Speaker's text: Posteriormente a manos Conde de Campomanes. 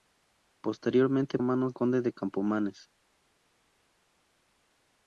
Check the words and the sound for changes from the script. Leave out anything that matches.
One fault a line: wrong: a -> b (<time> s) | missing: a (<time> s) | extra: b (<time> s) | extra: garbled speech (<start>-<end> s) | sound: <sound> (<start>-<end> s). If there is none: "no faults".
no faults